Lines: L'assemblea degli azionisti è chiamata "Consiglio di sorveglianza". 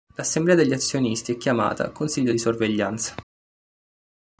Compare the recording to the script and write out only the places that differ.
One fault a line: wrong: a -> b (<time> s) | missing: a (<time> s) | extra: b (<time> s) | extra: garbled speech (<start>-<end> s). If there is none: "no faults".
no faults